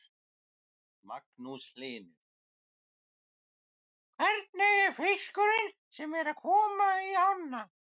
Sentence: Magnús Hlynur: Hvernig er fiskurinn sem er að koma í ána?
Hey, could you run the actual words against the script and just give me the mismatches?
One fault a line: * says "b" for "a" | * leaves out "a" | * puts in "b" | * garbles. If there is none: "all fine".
all fine